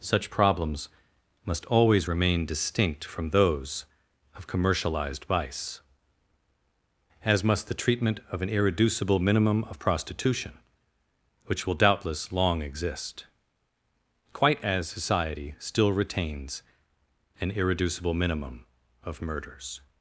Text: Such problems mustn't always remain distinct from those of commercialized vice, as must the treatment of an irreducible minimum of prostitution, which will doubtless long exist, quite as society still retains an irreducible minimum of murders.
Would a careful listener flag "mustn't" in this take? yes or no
yes